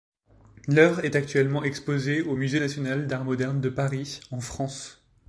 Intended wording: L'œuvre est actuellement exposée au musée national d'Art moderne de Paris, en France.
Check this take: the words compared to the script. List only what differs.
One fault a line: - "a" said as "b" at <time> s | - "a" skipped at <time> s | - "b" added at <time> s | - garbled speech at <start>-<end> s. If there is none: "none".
none